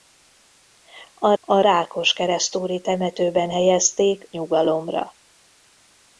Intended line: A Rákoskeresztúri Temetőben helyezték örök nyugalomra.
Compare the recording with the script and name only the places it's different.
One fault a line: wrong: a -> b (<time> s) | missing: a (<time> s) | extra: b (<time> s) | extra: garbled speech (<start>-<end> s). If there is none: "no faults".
extra: a (1.4 s)
missing: örök (4.3 s)